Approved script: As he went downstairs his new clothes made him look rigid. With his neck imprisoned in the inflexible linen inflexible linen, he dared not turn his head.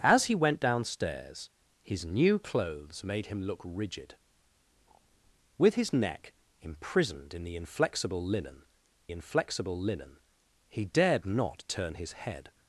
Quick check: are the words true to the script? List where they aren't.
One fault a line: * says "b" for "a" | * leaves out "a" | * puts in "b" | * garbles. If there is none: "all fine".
all fine